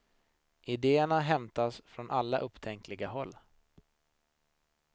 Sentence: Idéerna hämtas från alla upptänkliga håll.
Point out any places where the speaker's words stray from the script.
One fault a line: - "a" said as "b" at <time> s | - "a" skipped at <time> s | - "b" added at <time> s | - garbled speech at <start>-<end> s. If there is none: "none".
none